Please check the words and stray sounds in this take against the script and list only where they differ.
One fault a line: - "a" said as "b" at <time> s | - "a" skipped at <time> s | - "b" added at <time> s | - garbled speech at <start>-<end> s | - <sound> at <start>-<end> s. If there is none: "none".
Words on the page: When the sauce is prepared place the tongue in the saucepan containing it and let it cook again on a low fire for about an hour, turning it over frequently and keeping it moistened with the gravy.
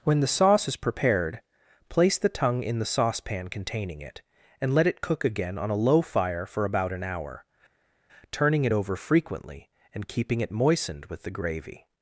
none